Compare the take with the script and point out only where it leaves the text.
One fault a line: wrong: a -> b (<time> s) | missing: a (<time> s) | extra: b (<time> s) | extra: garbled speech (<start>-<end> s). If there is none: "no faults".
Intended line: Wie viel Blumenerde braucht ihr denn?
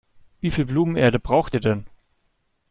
no faults